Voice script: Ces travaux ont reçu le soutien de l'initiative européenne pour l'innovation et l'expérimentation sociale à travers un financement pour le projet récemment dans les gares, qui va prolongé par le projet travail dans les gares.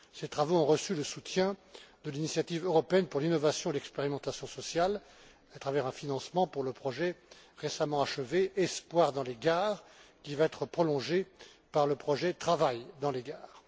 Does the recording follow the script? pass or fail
fail